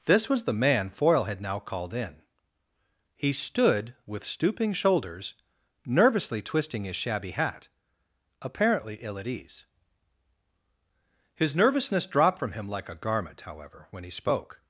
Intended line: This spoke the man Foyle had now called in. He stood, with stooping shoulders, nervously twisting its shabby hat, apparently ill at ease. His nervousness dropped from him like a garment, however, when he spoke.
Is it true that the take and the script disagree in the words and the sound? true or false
true